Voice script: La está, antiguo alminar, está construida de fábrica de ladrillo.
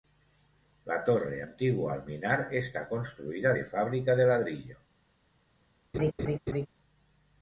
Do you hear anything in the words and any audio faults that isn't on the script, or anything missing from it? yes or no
yes